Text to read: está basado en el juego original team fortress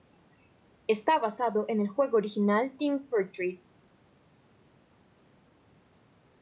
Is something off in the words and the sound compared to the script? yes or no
no